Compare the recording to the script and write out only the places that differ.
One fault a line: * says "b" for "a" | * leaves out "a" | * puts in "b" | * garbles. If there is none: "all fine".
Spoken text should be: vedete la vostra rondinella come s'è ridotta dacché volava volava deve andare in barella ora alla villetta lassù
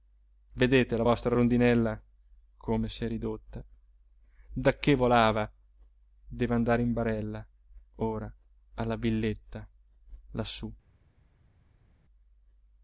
* leaves out "volava"